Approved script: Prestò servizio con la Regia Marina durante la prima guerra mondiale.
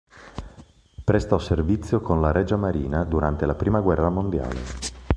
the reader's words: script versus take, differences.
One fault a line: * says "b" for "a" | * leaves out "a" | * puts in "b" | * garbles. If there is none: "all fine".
all fine